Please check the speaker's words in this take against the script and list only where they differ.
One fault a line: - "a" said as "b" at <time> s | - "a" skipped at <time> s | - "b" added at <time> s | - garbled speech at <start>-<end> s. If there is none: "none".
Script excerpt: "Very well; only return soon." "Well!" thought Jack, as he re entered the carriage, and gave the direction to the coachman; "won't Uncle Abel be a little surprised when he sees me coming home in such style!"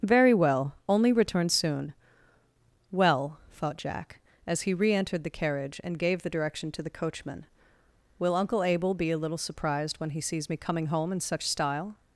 - "won't" said as "will" at 8.2 s